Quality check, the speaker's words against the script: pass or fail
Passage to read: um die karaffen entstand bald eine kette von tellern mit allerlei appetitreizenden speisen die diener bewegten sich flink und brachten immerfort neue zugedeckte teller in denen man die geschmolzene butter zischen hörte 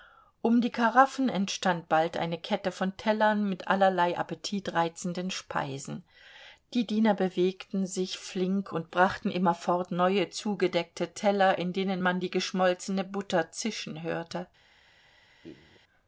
pass